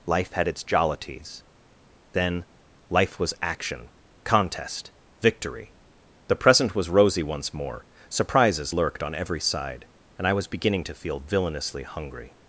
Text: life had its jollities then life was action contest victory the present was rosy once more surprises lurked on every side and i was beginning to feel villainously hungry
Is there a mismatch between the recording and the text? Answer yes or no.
no